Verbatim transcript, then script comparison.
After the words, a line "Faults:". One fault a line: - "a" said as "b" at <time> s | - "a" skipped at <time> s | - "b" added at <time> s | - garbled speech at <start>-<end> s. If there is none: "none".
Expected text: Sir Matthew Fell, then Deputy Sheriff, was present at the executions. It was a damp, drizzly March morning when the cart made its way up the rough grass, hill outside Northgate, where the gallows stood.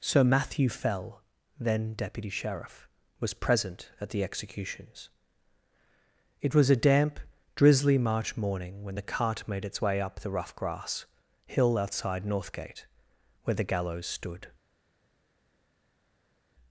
Sir Matthew Fell, then Deputy Sheriff, was present at the executions. It was a damp, drizzly March morning when the cart made its way up the rough grass, hill outside Northgate, where the gallows stood.
Faults:
none